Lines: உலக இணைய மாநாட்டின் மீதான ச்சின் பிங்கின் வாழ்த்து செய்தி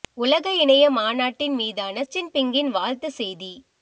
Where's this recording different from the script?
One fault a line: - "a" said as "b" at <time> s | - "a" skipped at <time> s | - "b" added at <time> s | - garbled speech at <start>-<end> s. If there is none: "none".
none